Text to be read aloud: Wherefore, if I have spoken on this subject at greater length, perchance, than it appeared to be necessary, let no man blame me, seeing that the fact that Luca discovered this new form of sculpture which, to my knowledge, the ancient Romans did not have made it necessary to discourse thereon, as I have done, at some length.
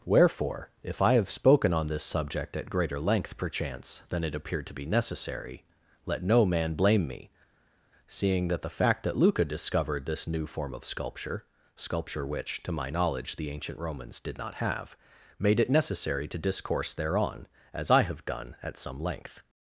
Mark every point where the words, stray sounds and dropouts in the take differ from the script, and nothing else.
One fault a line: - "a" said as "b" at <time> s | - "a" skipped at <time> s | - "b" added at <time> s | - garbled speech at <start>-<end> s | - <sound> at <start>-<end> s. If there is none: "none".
- "sculpture" added at 11.8 s